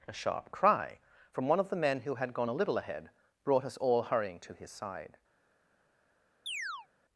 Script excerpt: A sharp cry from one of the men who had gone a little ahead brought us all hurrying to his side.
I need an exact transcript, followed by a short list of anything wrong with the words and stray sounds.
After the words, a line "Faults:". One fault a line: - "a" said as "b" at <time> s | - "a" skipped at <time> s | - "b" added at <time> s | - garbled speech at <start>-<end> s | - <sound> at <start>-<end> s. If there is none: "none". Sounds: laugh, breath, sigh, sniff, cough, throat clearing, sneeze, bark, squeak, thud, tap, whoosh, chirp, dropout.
A sharp cry from one of the men who had gone a little ahead brought us all hurrying to his side.
Faults:
- chirp at 6.5-6.9 s